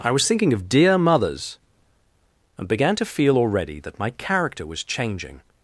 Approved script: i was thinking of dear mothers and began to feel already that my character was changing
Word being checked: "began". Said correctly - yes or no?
yes